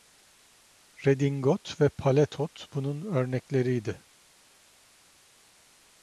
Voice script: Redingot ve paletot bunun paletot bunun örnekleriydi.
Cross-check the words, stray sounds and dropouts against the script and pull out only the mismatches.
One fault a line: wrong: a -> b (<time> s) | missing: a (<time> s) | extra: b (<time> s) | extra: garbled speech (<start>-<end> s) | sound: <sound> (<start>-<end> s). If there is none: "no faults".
missing: paletot bunun (3.0 s)